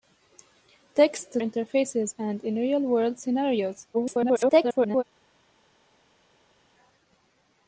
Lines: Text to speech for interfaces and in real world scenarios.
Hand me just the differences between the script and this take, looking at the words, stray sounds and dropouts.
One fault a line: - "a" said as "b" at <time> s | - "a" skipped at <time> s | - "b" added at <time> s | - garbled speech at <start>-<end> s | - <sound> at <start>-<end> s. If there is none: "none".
- "speech for" skipped at 1.4 s
- garbled speech at 3.9-5.0 s